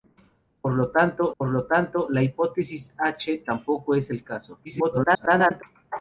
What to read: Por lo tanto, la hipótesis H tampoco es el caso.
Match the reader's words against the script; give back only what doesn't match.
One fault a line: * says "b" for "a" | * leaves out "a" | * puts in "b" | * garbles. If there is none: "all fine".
* puts in "por lo tanto"
* garbles